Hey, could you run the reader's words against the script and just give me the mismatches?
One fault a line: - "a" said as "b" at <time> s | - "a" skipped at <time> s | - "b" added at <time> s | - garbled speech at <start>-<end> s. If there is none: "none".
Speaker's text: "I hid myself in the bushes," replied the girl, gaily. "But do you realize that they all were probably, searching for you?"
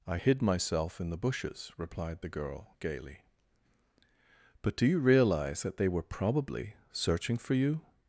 - "all" skipped at 5.9 s